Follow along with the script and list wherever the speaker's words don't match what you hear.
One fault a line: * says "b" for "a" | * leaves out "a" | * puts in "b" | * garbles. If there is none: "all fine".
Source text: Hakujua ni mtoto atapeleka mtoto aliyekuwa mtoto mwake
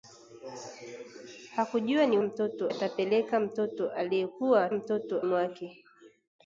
all fine